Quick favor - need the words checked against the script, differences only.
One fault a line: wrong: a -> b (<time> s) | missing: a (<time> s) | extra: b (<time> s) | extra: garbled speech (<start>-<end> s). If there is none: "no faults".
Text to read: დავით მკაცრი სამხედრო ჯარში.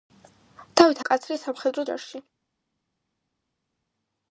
no faults